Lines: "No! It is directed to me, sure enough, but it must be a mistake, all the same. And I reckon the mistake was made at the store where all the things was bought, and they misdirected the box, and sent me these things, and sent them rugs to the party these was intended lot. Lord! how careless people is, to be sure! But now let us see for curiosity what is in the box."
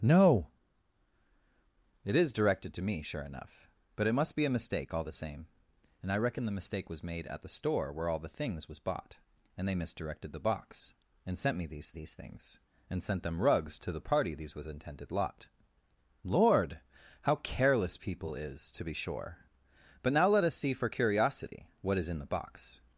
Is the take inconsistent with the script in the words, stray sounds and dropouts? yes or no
yes